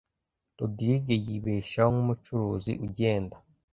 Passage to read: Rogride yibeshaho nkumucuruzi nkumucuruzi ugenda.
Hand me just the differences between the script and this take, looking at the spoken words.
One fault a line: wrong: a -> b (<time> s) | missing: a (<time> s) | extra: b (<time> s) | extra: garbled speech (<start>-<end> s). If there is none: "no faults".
missing: nkumucuruzi (2.7 s)